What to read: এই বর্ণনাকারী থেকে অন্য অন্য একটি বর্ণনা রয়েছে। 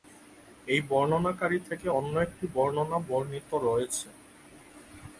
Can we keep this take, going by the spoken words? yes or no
no